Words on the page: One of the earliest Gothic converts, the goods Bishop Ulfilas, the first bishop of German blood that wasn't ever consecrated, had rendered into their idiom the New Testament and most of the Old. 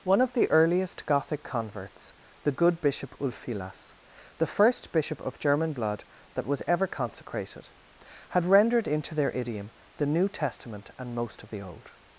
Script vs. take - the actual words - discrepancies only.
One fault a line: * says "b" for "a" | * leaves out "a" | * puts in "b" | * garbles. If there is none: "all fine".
* says "good" for "goods"
* says "was" for "wasn't"